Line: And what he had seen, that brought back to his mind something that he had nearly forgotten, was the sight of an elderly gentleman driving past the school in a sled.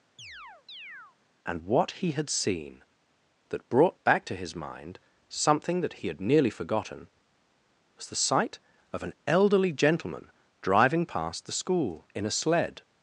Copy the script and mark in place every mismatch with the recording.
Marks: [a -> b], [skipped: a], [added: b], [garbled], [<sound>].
[chirp] And what he had seen, that brought back to his mind something that he had nearly forgotten, was the sight of an elderly gentleman driving past the school in a sled.